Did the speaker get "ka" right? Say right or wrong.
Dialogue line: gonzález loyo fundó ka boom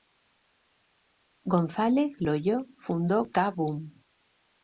right